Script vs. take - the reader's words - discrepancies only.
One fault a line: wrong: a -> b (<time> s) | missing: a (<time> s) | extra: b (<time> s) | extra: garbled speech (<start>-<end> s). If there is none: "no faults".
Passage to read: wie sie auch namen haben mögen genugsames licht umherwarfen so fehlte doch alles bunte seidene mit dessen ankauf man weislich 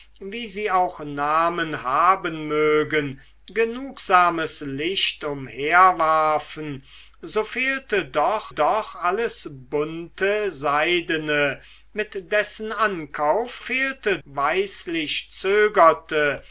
extra: doch (8.5 s)
wrong: man -> fehlte (13.6 s)